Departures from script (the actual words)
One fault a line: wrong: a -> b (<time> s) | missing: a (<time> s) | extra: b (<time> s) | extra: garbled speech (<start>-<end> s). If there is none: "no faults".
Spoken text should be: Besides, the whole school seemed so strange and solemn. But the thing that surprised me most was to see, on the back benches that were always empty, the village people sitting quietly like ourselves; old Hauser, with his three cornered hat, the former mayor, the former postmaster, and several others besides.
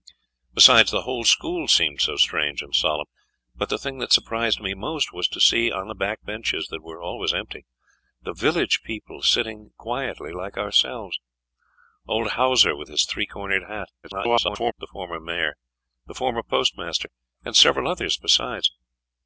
extra: garbled speech (14.0-14.7 s)